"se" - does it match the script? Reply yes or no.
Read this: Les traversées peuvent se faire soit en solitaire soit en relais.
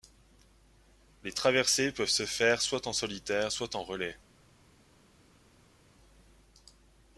yes